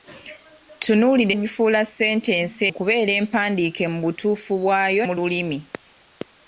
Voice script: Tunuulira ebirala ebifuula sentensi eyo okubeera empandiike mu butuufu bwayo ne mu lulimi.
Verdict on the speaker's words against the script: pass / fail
fail